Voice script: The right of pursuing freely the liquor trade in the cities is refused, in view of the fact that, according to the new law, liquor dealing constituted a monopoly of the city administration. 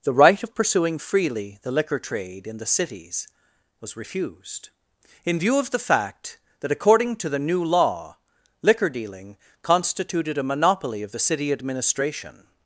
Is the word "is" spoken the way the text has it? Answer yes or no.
no